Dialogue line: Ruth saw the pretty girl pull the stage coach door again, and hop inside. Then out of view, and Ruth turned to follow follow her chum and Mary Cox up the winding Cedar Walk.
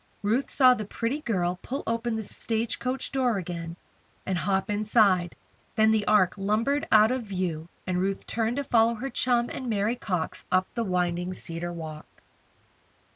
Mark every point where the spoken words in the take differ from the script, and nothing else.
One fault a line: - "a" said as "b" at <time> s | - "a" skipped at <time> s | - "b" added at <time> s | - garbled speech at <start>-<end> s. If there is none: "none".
- "open" added at 1.9 s
- "the Ark lumbered" added at 5.9 s
- "follow" skipped at 8.9 s